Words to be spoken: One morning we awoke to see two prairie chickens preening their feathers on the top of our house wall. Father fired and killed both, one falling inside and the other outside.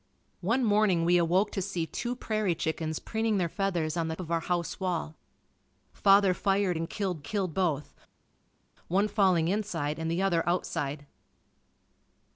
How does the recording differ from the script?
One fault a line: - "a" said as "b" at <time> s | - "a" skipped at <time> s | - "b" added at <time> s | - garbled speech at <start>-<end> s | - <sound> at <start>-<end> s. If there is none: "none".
- "top" skipped at 4.2 s
- "killed" added at 7.2 s